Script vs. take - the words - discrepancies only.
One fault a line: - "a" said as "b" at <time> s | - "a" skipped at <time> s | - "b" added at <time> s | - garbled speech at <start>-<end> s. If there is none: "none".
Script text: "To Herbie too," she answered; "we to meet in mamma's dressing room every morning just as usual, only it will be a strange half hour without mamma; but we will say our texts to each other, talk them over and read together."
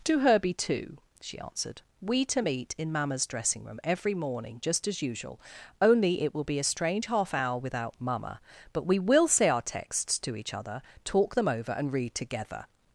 none